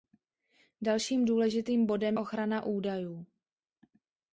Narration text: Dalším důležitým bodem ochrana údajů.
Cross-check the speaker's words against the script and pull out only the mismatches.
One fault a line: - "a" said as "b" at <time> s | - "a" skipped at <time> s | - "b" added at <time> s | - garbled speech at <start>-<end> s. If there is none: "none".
none